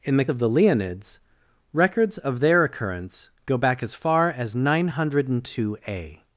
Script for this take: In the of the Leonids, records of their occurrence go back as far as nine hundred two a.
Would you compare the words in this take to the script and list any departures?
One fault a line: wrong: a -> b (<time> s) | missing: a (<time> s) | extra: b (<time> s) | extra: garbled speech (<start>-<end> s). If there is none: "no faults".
no faults